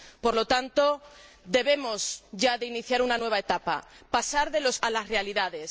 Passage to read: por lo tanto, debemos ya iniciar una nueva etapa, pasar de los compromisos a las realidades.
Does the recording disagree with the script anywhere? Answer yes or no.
yes